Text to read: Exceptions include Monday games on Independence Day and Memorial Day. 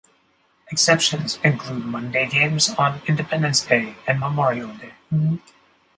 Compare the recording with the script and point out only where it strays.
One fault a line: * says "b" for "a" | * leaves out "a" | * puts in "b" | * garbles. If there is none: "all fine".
all fine